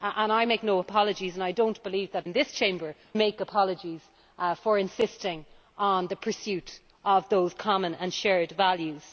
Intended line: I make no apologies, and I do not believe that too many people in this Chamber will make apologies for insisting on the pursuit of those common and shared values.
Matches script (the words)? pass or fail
fail